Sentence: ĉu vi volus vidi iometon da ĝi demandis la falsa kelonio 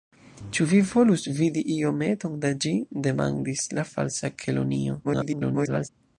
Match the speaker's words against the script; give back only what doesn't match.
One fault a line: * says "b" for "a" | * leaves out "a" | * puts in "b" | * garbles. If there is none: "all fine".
* garbles